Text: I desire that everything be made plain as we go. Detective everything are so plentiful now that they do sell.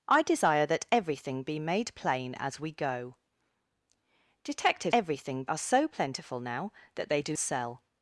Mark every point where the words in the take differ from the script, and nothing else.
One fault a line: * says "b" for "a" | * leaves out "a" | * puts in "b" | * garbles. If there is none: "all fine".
all fine